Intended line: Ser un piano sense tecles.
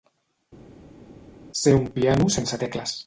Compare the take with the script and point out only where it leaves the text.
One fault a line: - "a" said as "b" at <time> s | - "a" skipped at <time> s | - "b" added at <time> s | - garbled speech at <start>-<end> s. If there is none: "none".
none